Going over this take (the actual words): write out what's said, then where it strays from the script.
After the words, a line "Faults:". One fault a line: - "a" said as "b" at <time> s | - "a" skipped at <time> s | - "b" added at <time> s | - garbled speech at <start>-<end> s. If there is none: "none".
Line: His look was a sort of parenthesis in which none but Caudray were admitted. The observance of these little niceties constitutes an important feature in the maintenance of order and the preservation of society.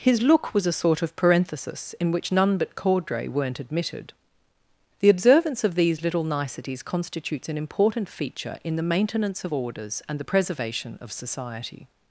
His look was a sort of parenthesis in which none but Caudray weren't admitted. The observance of these little niceties constitutes an important feature in the maintenance of orders and the preservation of society.
Faults:
- "were" said as "weren't" at 3.3 s
- "order" said as "orders" at 9.5 s